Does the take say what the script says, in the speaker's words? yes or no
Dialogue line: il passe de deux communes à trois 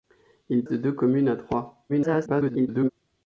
no